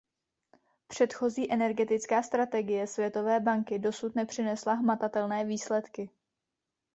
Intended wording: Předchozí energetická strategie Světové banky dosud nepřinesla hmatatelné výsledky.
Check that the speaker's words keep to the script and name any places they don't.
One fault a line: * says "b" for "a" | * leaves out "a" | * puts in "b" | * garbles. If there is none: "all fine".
all fine